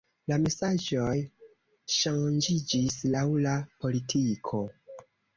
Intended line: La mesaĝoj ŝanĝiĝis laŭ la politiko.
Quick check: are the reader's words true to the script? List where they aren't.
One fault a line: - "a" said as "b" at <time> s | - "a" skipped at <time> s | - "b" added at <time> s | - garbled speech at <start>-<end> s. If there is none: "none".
none